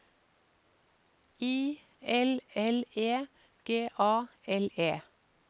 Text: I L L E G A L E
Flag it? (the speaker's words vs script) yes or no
no